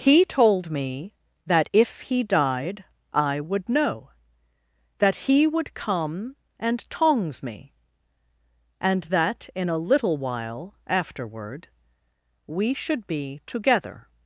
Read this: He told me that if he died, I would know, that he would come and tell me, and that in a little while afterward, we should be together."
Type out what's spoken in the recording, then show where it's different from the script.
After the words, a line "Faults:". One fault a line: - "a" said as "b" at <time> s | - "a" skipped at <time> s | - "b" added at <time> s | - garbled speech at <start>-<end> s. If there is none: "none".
He told me that if he died, I would know, that he would come and tongs me, and that in a little while afterward, we should be together."
Faults:
- "tell" said as "tongs" at 6.9 s